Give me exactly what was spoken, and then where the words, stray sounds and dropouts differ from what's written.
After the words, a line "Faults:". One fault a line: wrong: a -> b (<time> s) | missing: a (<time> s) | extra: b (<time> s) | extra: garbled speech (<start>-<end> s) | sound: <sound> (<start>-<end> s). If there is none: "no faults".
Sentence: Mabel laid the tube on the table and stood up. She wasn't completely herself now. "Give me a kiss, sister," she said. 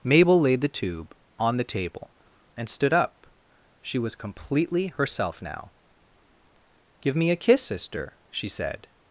Mabel laid the tube on the table and stood up. She was completely herself now. "Give me a kiss, sister," she said.
Faults:
wrong: wasn't -> was (4.0 s)